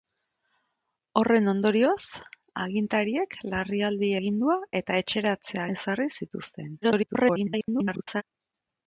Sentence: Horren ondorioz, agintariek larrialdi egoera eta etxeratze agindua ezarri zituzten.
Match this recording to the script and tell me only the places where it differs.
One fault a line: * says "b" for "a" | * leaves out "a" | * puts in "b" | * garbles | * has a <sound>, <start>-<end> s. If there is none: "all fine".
* says "agindua" for "egoera"
* leaves out "agindua"
* garbles